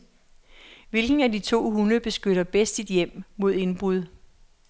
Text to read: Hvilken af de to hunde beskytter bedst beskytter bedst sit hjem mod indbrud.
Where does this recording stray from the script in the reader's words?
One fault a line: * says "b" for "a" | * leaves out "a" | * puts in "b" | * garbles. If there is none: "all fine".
* leaves out "beskytter bedst"